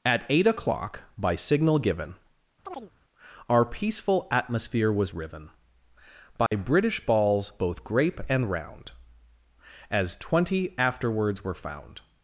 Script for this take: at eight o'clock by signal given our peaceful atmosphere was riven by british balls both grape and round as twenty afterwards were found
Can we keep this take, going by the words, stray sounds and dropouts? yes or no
no